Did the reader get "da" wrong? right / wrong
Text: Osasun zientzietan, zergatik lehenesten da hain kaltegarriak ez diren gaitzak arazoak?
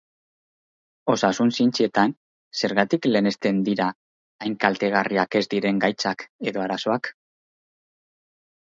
wrong